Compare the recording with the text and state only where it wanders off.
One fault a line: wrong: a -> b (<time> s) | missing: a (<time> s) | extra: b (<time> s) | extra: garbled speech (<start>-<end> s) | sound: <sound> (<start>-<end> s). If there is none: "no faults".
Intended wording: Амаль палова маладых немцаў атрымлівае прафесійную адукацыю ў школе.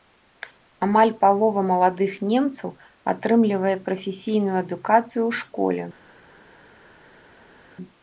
no faults